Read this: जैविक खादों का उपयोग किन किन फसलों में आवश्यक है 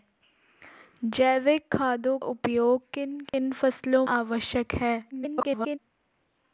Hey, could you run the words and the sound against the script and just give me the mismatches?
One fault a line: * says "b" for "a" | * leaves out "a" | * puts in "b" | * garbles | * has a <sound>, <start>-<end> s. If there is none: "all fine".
* leaves out "का"
* has a dropout, 3.3-3.3 s
* leaves out "में"
* garbles